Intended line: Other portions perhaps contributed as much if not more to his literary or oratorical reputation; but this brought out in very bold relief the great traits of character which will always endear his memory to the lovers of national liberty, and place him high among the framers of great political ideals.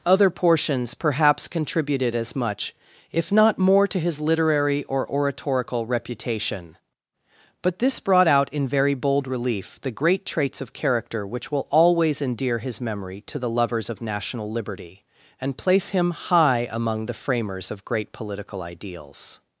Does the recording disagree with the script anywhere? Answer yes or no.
no